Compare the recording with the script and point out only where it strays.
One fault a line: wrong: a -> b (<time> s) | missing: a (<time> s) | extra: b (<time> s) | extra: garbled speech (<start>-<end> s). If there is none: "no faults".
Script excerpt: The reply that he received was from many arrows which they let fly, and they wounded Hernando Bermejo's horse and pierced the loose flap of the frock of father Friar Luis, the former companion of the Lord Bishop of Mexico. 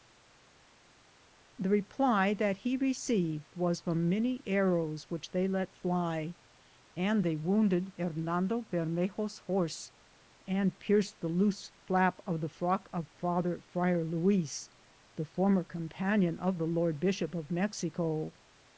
no faults